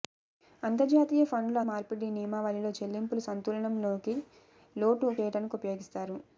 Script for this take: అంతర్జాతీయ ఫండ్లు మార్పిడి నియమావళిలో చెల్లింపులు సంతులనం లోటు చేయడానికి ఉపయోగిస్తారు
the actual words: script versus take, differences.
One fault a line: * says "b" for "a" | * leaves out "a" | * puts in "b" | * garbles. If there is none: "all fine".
all fine